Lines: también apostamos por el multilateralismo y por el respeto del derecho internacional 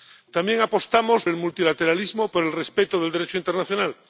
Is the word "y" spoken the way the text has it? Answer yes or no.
no